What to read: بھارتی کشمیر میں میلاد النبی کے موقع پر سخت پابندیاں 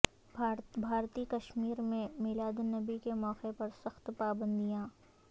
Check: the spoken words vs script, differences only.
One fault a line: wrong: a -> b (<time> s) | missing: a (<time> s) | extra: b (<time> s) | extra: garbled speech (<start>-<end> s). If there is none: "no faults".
no faults